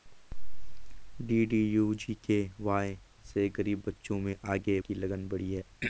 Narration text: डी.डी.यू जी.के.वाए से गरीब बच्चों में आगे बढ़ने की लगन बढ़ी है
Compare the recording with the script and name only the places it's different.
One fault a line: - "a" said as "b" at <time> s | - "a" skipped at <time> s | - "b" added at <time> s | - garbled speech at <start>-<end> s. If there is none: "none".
- "बढ़ने" skipped at 4.8 s